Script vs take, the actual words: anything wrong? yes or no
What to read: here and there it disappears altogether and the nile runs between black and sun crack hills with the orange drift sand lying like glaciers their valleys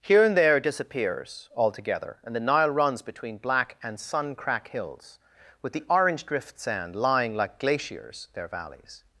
no